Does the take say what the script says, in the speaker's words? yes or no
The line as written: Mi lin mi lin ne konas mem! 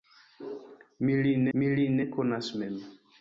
yes